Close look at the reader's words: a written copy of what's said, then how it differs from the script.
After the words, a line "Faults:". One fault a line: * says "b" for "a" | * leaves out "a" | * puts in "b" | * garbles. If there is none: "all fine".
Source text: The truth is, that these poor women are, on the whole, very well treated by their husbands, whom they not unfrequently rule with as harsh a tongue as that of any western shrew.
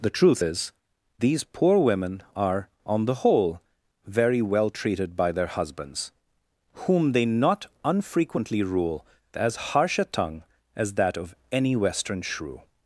The truth is, these poor women are, on the whole, very well treated by their husbands, whom they not unfrequently rule as harsh a tongue as that of any western shrew.
Faults:
* leaves out "that"
* leaves out "with"